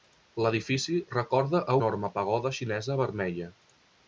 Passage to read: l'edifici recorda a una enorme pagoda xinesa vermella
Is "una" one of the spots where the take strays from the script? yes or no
yes